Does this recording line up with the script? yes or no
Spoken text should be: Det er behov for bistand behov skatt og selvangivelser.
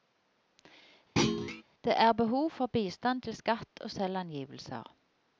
no